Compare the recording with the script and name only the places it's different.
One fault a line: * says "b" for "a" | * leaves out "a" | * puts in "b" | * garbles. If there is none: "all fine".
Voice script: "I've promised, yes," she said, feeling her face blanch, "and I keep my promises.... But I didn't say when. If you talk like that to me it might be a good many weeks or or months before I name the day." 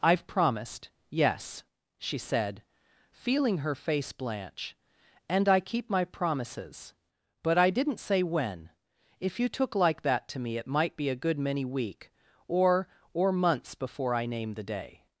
* says "took" for "talk"
* says "week" for "weeks"